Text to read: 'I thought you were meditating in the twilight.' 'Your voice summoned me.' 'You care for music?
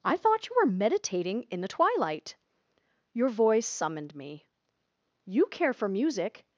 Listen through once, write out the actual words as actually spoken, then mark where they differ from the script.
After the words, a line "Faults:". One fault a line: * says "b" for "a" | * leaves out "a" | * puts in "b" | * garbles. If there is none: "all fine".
'I thought you were meditating in the twilight.' 'Your voice summoned me.' 'You care for music?
Faults:
all fine